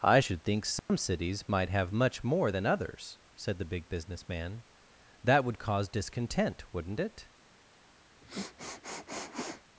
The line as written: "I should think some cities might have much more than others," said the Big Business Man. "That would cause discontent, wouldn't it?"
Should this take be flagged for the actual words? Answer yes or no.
no